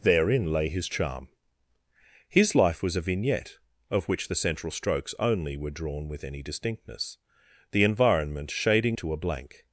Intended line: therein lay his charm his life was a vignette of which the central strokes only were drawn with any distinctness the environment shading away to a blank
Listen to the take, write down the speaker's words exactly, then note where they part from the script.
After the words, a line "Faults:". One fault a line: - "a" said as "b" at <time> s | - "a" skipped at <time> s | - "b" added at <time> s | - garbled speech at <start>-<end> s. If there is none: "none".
therein lay his charm his life was a vignette of which the central strokes only were drawn with any distinctness the environment shading to a blank
Faults:
- "away" skipped at 9.0 s